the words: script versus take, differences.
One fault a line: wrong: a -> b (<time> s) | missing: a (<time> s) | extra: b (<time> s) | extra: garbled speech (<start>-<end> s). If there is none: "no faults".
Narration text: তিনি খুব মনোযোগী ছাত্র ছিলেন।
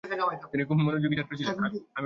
no faults